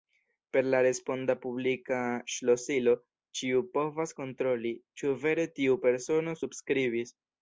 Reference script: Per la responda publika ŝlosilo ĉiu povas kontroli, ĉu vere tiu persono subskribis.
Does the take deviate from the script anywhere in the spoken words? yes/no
no